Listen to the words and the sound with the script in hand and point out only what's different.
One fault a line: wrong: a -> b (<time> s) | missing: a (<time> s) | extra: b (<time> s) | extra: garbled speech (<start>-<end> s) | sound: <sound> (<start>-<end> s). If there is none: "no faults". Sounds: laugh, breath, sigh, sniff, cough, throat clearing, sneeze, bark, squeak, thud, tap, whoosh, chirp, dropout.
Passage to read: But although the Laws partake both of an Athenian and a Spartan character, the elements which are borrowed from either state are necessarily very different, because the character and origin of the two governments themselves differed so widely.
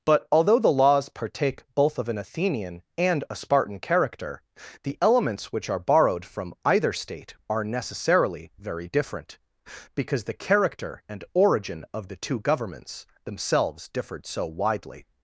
no faults